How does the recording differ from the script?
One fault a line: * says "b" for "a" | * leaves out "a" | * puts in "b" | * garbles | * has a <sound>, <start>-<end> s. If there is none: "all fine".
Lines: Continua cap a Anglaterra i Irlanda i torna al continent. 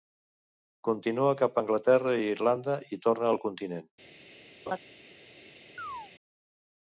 * has a laugh, 4.7-4.8 s
* has a chirp, 5.8-6.1 s